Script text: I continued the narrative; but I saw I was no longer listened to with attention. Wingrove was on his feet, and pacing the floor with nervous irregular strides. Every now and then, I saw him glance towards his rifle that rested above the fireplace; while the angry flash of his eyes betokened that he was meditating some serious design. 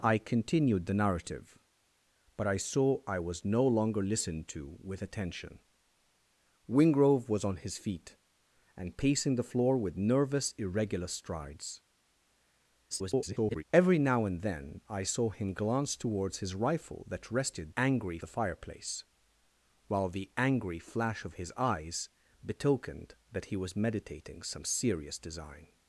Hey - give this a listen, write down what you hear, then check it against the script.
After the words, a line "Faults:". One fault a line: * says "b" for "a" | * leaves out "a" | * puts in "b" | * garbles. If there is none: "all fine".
I continued the narrative; but I saw I was no longer listened to with attention. Wingrove was on his feet, and pacing the floor with nervous irregular strides. [garbled] Every now and then, I saw him glance towards his rifle that rested angry the fireplace; while the angry flash of his eyes betokened that he was meditating some serious design.
Faults:
* garbles
* says "angry" for "above"